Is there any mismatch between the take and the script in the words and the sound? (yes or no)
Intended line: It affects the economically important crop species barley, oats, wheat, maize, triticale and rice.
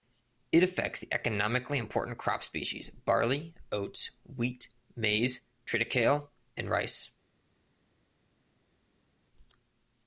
no